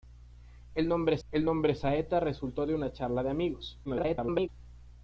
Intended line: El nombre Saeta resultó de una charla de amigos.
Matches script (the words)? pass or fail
fail